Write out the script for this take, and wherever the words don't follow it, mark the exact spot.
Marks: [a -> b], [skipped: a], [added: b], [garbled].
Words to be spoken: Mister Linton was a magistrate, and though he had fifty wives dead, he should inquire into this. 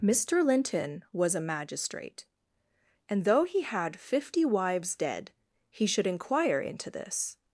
Mister Linton was a magistrate, and though he had fifty wives dead, he should inquire into this.